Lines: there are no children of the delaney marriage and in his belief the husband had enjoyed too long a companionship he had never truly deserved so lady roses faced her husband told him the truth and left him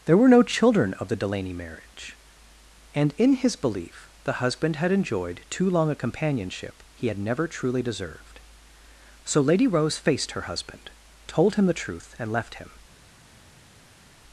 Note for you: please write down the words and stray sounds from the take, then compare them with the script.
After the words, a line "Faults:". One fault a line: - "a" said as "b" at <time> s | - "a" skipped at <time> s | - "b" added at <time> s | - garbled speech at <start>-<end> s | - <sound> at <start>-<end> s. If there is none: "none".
there were no children of the delaney marriage and in his belief the husband had enjoyed too long a companionship he had never truly deserved so lady rose faced her husband told him the truth and left him
Faults:
- "are" said as "were" at 0.2 s
- "roses" said as "rose" at 9.7 s